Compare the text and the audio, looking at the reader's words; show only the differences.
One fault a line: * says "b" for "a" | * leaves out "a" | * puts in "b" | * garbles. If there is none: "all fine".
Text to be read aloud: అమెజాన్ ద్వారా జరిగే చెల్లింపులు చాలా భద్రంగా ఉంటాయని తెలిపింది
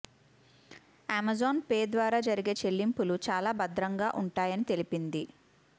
* puts in "పే"